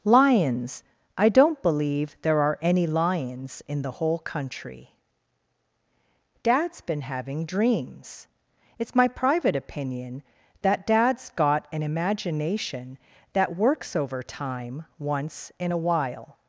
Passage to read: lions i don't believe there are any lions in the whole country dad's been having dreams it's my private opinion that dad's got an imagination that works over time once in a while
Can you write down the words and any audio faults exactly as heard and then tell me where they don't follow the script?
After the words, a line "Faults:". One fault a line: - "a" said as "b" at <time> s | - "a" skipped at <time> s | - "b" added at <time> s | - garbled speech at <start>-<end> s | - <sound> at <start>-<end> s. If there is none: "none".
lions i don't believe there are any lions in the whole country dad's been having dreams it's my private opinion that dad's got an imagination that works over time once in a while
Faults:
none